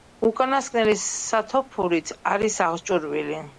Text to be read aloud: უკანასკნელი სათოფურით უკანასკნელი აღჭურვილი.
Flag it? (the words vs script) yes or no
yes